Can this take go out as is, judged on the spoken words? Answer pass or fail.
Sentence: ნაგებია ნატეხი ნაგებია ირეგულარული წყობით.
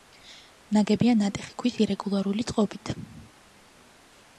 fail